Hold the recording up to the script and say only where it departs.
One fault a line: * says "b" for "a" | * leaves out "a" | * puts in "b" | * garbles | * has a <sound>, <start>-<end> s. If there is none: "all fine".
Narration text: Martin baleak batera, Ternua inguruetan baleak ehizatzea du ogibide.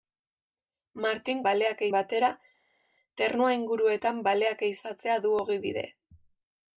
all fine